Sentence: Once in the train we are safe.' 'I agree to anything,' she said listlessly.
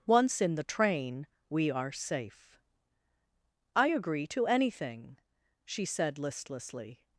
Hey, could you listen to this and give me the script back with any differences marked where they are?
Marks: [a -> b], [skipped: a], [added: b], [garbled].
Once in the train we are safe.' 'I agree to anything,' she said listlessly.